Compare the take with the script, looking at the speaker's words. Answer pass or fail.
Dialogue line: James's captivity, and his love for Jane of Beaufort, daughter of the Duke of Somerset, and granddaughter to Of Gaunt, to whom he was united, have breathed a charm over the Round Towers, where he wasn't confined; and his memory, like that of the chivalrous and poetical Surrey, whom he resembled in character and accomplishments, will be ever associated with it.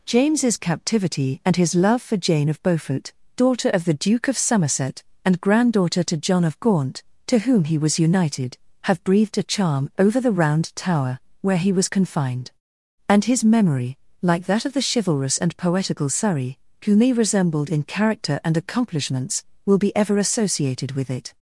fail